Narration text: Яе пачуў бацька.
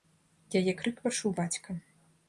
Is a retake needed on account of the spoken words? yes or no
yes